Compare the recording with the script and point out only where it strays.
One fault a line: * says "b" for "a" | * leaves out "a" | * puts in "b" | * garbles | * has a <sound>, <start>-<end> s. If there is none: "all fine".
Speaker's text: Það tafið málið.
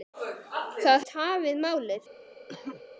* has a cough, 2.5-2.8 s